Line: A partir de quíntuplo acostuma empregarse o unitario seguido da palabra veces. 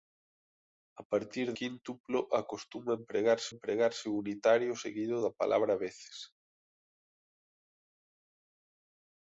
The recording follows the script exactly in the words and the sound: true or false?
false